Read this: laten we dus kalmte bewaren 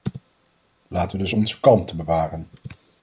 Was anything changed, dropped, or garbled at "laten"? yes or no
no